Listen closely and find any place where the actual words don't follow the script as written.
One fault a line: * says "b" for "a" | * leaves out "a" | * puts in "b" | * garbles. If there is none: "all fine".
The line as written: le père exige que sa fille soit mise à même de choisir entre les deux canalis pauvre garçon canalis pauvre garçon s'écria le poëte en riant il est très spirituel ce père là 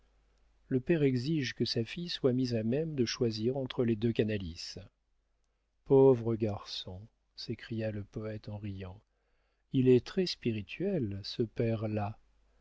* leaves out "canalis pauvre garçon"